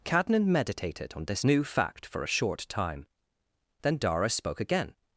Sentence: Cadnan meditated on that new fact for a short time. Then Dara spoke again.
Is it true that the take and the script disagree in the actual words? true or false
true